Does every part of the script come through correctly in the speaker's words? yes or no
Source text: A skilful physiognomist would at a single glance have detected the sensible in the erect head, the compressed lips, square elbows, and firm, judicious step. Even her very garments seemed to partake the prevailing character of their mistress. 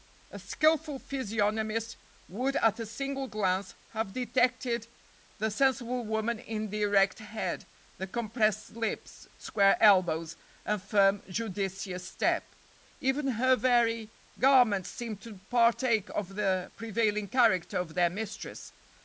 no